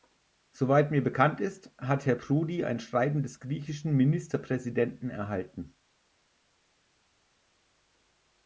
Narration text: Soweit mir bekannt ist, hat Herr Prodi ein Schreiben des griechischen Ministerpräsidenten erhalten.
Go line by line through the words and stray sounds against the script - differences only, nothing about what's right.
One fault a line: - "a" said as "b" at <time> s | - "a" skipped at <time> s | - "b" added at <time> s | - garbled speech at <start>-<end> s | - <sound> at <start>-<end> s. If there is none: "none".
none